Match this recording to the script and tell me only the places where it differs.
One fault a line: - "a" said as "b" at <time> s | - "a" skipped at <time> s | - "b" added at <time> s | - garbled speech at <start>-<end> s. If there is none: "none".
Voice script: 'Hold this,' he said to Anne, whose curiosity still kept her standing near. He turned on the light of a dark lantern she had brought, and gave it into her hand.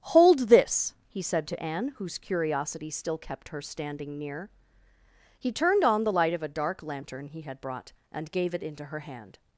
- "she" said as "he" at 7.3 s